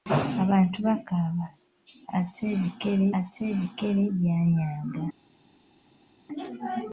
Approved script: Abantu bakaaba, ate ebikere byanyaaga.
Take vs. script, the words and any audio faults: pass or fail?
fail